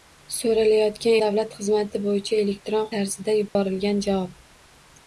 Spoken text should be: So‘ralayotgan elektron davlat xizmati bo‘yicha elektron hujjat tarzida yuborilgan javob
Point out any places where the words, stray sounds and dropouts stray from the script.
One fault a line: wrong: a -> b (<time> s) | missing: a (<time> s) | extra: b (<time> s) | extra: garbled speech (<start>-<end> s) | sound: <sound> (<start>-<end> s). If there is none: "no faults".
missing: elektron (1.2 s)
missing: hujjat (2.9 s)
sound: dropout (3.5-3.6 s)